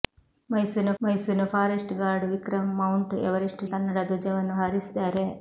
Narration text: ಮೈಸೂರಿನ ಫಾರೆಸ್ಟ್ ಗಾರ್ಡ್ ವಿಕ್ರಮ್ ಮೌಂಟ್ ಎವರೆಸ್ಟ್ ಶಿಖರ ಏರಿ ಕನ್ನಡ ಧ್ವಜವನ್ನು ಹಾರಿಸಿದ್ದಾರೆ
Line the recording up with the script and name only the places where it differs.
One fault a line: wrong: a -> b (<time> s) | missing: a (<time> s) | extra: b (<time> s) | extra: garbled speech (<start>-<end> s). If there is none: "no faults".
extra: ಮೈಸೂರಿನ (1.0 s)
missing: ಶಿಖರ ಏರಿ (3.6 s)